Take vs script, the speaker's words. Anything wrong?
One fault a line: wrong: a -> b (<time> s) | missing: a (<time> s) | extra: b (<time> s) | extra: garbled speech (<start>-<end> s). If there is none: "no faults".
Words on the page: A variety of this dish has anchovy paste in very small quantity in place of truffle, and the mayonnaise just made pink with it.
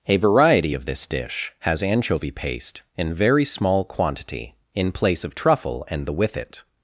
missing: mayonnaise just made pink (6.1 s)